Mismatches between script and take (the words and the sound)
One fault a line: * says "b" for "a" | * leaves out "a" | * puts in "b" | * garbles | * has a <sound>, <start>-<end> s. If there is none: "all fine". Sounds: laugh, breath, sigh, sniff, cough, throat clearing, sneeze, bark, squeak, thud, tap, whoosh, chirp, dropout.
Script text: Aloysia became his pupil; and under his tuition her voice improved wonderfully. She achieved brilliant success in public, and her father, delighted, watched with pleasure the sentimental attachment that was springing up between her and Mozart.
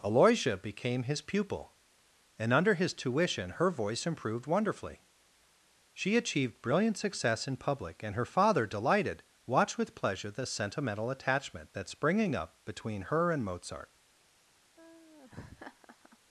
* leaves out "was"
* has a laugh, 14.8-16.2 s